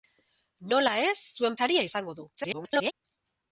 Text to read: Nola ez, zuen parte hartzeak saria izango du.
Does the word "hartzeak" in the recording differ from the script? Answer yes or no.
yes